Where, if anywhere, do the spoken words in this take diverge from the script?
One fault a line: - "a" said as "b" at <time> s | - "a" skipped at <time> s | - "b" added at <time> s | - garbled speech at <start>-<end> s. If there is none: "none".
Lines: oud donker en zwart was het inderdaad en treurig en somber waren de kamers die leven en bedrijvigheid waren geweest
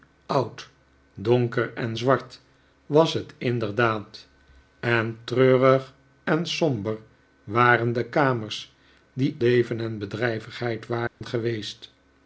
none